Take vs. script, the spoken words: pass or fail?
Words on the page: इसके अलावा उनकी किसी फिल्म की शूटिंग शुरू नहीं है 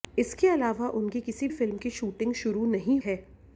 pass